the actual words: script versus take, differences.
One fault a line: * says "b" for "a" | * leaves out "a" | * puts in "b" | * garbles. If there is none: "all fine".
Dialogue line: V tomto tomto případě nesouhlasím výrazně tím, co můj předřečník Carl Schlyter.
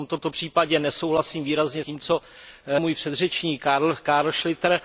all fine